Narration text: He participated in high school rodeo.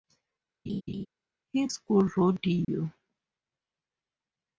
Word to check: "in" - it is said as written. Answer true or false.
false